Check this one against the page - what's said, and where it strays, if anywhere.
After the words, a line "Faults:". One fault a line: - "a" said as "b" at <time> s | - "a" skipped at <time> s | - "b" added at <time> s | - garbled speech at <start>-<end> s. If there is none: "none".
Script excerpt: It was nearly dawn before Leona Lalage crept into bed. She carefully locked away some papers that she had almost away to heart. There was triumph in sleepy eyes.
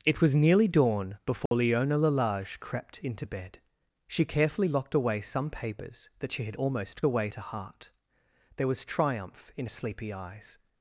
It was nearly dawn before Leona Lalage crept into bed. She carefully locked away some papers that she had almost away to heart. There was triumph in sleepy eyes.
Faults:
none